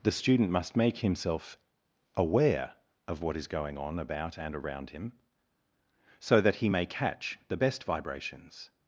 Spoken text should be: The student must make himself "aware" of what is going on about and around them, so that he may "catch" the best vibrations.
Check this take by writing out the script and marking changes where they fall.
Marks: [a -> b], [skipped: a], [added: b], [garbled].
The student must make himself "aware" of what is going on about and around [them, -> him] so that he may "catch" the best vibrations.